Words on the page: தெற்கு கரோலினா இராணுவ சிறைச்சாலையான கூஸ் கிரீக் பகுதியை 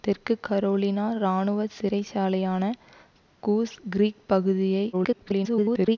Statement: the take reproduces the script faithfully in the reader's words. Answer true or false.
false